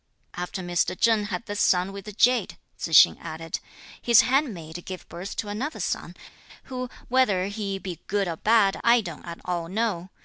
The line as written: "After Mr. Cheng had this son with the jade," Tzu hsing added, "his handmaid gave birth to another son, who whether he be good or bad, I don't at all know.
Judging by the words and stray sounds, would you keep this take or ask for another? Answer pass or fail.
pass